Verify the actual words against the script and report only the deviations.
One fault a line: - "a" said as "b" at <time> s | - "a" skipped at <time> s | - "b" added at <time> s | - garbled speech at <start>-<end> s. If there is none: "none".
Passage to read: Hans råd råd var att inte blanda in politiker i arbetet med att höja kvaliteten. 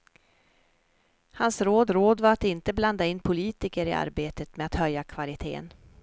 none